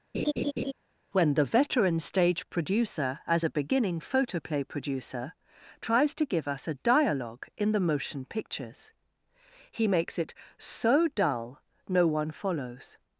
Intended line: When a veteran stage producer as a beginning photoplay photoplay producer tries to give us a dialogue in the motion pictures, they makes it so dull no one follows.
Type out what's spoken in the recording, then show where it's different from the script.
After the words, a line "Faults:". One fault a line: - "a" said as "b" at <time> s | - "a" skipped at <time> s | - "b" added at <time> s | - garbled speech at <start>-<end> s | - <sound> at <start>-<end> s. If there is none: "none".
When the veteran stage producer as a beginning photoplay producer tries to give us a dialogue in the motion pictures, he makes it so dull no one follows.
Faults:
- laugh at 0.1-0.7 s
- "a" said as "the" at 1.3 s
- "photoplay" skipped at 4.6 s
- "they" said as "he" at 9.7 s